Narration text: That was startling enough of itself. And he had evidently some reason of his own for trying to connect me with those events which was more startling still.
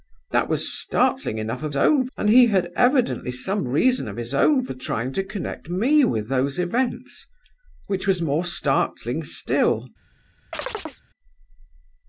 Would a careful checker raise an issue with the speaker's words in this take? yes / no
yes